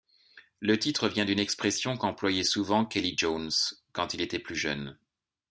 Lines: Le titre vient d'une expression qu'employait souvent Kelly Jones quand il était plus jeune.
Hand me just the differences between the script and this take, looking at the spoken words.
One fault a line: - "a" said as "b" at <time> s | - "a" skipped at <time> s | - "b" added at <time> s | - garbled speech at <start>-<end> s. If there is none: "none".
none